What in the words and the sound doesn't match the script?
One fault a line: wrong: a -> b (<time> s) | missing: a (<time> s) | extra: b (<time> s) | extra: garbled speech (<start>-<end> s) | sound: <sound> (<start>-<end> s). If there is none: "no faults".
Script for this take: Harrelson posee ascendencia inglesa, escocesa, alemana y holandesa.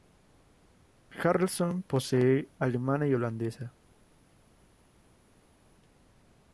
missing: ascendencia inglesa escocesa (2.5 s)